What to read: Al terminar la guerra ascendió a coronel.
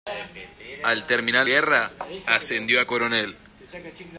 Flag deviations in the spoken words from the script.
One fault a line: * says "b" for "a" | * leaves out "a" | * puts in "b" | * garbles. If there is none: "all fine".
* leaves out "la"